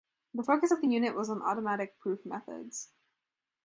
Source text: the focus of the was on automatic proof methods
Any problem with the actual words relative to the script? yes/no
yes